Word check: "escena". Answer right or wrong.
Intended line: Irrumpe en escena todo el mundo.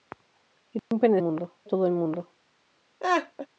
wrong